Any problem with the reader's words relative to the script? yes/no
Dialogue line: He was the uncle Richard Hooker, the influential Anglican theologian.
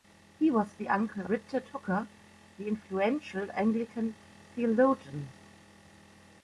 no